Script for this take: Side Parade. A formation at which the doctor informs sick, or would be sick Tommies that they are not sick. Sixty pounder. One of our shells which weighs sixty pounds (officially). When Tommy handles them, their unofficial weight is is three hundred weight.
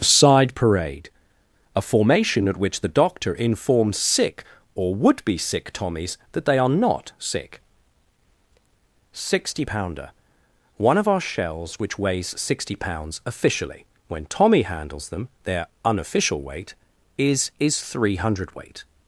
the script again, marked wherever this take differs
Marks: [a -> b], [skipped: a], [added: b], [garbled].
Side Parade. A formation at which the doctor informs sick, or would be sick Tommies that they are not sick. Sixty pounder. One of our shells which weighs sixty pounds (officially). When Tommy handles them, their unofficial weight is is three hundred weight.